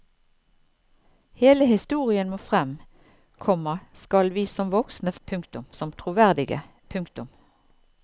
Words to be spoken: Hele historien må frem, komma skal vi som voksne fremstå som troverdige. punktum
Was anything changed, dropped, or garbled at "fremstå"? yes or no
yes